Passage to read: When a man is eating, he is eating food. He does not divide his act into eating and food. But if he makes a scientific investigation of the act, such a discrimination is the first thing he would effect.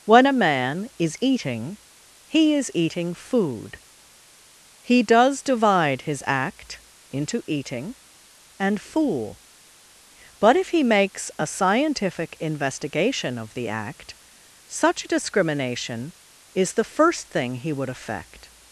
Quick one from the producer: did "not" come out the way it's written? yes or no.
no